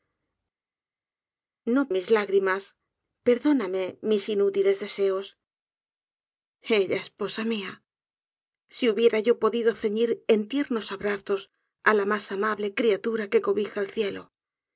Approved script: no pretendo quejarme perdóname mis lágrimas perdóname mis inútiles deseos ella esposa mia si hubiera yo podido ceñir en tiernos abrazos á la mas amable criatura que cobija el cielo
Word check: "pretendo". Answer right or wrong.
wrong